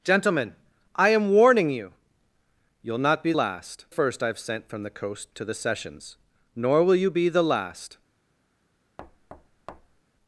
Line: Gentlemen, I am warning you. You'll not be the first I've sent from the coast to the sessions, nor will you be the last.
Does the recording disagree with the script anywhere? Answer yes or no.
yes